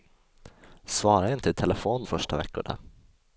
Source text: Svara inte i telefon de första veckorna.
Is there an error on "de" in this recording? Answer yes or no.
yes